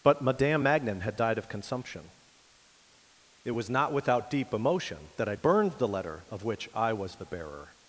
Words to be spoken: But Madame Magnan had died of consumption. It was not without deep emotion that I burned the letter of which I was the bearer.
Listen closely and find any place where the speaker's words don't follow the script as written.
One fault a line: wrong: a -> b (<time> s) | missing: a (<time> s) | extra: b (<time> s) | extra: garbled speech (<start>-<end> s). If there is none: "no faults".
no faults